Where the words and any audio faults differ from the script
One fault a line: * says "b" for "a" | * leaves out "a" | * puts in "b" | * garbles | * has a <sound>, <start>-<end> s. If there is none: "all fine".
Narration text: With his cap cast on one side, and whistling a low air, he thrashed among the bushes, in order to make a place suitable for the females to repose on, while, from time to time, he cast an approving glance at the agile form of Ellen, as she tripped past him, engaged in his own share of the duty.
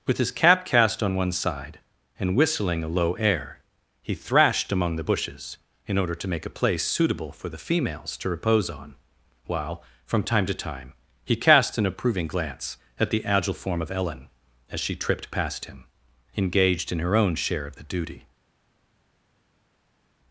* says "her" for "his"